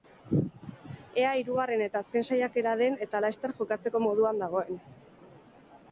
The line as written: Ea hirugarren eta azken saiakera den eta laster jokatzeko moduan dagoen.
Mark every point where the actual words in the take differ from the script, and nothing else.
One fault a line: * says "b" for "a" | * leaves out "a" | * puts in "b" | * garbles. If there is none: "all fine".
all fine